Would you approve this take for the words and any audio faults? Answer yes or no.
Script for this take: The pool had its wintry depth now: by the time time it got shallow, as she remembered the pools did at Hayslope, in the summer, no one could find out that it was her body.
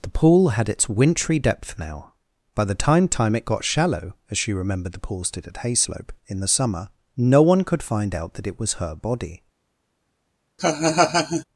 no